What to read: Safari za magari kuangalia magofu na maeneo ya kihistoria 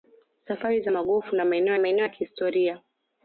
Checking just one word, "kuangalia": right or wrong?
wrong